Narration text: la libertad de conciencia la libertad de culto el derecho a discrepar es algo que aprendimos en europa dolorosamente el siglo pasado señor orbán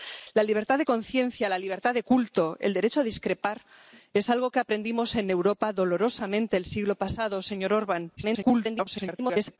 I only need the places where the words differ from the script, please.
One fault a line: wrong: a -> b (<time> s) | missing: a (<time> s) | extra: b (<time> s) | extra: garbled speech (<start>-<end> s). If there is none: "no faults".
extra: garbled speech (8.2-9.6 s)